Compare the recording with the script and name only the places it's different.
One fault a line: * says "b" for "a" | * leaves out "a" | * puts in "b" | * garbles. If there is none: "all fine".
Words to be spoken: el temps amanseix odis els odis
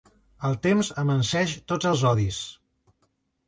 * says "tots" for "odis"